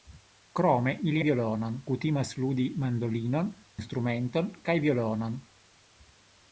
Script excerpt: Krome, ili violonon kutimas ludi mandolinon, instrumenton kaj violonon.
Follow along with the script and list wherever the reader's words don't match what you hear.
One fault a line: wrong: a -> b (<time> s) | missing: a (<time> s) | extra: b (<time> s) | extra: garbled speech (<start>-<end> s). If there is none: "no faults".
no faults